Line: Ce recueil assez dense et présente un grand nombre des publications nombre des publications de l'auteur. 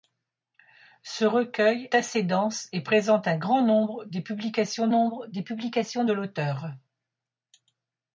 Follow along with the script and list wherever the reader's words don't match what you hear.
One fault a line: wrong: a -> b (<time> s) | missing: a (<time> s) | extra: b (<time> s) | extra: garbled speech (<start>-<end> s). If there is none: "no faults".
no faults